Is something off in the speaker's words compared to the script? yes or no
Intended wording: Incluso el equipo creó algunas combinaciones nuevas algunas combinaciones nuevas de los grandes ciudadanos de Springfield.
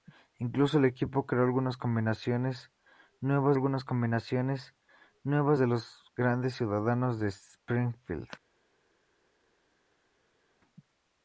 no